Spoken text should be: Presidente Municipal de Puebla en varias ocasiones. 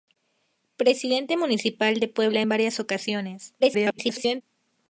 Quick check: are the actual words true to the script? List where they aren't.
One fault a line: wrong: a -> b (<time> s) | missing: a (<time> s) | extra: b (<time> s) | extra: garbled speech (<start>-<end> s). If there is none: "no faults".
extra: garbled speech (3.6-4.4 s)